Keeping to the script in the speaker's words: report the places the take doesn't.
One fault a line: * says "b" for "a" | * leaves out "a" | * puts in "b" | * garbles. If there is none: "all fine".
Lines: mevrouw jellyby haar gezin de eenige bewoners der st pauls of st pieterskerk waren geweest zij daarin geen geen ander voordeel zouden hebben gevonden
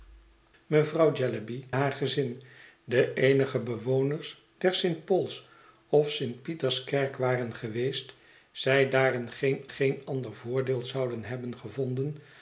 all fine